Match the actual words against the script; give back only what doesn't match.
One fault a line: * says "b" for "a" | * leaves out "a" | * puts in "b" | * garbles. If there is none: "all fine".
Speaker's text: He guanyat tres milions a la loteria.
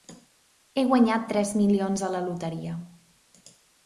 all fine